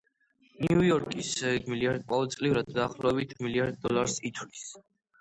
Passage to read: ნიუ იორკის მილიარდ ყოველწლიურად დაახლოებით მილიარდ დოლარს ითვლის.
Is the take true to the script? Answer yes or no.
yes